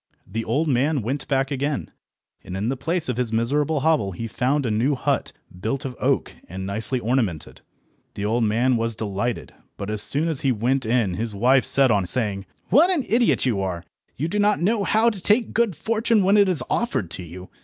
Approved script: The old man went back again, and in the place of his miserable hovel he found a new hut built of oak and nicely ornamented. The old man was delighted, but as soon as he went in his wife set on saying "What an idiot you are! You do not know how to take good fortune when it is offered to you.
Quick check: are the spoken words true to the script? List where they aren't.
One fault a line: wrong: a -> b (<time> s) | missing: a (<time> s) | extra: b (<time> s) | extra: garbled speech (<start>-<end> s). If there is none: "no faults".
no faults